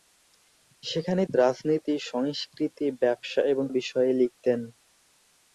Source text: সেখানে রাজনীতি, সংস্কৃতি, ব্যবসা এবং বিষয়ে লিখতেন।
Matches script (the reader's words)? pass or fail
pass